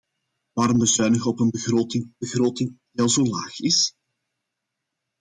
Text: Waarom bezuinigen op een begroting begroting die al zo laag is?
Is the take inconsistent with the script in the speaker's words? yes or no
no